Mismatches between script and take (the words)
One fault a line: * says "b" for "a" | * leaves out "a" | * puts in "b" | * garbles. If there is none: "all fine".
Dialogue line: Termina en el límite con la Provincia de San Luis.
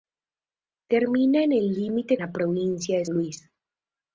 * leaves out "con"
* leaves out "San"